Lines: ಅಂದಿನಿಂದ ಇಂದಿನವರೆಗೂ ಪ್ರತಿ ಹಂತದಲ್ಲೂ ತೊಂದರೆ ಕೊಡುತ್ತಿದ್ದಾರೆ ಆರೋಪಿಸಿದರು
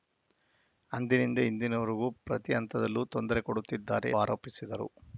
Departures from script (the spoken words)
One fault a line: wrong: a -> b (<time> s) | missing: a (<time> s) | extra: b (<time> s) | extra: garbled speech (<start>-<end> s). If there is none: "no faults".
no faults